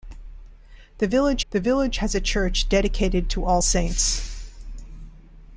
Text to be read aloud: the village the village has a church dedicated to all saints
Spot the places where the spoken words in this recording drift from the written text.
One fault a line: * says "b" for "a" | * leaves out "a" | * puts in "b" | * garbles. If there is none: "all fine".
all fine